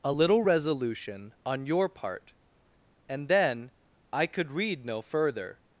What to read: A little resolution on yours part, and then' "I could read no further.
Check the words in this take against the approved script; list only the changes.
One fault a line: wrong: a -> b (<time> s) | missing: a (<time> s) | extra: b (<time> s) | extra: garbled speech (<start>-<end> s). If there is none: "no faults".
wrong: yours -> your (1.7 s)